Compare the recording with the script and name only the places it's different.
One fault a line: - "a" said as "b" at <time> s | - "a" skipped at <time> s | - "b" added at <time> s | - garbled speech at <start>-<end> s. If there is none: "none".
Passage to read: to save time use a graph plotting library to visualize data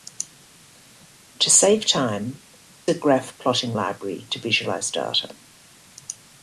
- "use" skipped at 2.4 s